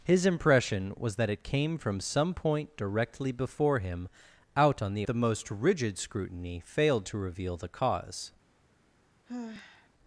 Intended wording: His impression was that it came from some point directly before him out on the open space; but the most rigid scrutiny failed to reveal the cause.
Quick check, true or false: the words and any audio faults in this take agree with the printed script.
false